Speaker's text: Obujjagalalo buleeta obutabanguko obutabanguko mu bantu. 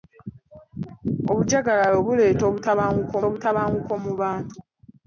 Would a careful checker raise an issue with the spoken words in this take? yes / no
no